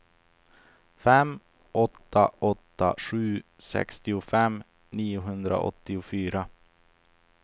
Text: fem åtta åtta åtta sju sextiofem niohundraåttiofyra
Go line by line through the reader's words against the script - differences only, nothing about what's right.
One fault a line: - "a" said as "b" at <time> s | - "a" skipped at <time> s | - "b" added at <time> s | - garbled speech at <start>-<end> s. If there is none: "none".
- "åtta" skipped at 3.0 s